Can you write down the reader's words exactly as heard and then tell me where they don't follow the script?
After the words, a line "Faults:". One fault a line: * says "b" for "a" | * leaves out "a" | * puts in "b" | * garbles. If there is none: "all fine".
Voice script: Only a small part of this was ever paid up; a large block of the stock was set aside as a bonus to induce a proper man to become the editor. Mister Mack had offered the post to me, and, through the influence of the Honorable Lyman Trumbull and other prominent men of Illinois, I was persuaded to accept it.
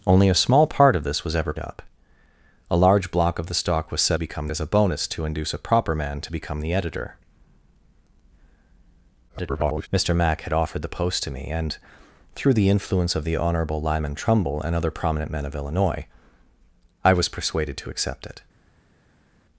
Only a small part of this was ever up; a large block of the stock was set become as a bonus to induce a proper man to become the editor. [garbled] Mister Mack had offered the post to me, and, through the influence of the Honorable Lyman Trumbull and other prominent men of Illinois, I was persuaded to accept it.
Faults:
* leaves out "paid"
* says "become" for "aside"
* garbles